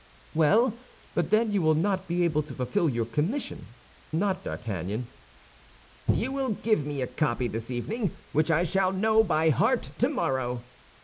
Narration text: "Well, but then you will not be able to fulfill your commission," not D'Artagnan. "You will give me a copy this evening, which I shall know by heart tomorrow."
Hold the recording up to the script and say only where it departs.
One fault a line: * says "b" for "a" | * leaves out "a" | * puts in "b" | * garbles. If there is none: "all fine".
all fine